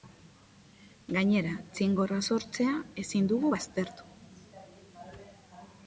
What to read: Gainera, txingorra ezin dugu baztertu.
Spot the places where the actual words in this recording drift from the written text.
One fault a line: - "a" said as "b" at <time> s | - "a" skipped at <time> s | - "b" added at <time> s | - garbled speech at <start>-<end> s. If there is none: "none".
- "sortzea" added at 2.3 s